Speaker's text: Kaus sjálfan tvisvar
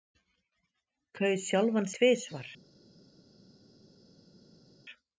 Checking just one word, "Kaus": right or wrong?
right